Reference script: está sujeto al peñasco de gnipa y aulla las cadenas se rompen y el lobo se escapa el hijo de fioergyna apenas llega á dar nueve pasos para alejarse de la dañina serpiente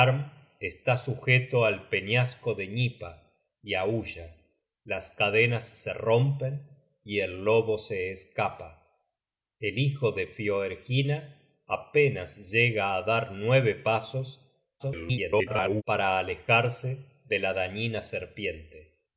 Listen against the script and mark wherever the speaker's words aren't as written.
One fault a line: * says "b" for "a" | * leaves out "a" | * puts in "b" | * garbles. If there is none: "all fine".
* garbles